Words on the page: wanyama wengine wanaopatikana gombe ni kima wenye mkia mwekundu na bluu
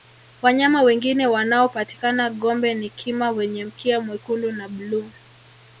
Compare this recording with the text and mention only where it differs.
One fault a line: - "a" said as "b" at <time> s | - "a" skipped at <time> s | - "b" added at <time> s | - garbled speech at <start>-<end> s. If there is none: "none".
none